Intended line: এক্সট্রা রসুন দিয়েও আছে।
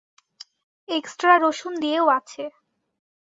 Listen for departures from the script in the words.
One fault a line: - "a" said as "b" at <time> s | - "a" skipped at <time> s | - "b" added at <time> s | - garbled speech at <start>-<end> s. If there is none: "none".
none